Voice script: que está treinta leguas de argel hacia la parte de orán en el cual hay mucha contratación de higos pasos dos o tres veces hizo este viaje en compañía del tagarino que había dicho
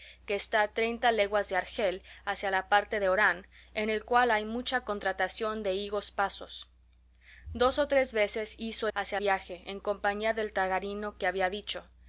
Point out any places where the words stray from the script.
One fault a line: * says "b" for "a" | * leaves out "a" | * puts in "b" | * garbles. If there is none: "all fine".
* says "hacia" for "este"